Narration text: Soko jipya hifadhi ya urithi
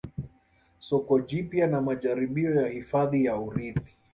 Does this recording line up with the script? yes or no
no